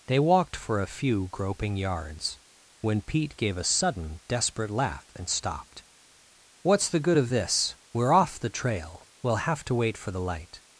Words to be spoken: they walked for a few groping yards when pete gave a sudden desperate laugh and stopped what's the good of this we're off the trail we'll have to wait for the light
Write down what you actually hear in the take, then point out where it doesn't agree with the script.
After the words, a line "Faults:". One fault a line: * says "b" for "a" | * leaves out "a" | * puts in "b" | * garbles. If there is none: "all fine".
they walked for a few groping yards when pete gave a sudden desperate laugh and stopped what's the good of this we're off the trail we'll have to wait for the light
Faults:
all fine